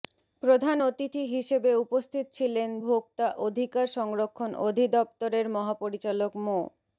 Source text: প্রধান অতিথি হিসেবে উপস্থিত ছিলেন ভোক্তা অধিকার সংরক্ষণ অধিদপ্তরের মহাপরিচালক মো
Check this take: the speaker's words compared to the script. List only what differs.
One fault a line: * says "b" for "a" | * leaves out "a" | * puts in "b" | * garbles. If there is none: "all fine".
all fine